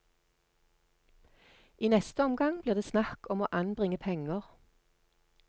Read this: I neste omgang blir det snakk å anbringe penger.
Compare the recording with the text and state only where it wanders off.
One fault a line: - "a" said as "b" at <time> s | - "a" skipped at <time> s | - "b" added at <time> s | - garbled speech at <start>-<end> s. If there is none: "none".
- "om" added at 3.3 s